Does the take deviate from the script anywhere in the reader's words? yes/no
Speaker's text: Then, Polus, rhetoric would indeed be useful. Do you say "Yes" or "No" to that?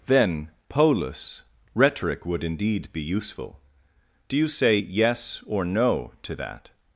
no